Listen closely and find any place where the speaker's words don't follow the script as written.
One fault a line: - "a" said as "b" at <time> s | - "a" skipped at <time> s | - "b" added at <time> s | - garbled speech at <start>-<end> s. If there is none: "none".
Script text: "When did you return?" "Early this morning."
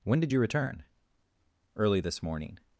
none